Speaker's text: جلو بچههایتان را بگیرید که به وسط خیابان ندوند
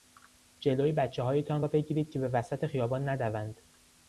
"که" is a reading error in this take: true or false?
false